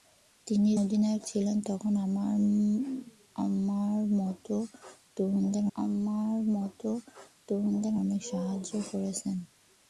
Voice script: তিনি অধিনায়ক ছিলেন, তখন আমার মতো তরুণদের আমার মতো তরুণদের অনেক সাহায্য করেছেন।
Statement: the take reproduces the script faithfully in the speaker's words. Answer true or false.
true